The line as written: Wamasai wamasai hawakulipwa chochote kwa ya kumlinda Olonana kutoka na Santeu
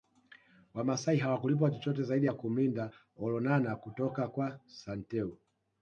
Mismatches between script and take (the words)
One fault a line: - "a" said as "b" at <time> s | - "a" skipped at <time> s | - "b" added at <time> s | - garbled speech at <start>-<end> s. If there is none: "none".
- "wamasai" skipped at 1.2 s
- "kwa" said as "zaidi" at 2.0 s
- "na" said as "kwa" at 4.3 s